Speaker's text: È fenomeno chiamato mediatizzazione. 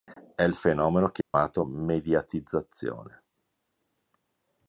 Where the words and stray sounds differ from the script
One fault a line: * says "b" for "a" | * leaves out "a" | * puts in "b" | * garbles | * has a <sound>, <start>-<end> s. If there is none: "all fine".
* puts in "il"
* has a dropout, 1.2-1.3 s